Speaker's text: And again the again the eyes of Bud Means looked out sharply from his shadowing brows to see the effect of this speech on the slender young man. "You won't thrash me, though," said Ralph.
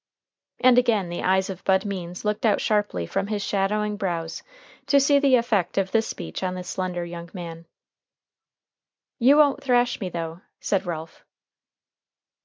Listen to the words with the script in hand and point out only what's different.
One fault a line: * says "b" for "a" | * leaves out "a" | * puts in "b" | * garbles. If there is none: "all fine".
* leaves out "again the"